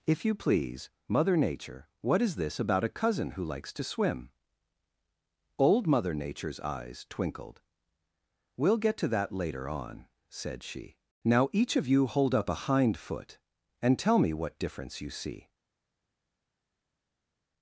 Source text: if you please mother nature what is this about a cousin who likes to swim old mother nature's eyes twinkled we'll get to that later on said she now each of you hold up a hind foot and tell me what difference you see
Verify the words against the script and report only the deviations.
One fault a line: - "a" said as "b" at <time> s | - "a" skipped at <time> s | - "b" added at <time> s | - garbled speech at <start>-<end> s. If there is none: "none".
none